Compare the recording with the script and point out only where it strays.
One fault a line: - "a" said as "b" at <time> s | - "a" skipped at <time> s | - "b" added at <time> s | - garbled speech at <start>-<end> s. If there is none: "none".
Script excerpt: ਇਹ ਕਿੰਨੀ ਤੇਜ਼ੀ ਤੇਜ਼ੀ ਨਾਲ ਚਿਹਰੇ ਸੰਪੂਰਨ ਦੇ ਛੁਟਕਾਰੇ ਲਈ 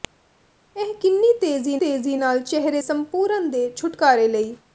none